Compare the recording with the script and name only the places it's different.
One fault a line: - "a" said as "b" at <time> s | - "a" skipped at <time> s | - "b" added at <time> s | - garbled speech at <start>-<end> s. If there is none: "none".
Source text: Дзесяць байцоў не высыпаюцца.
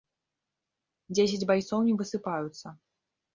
none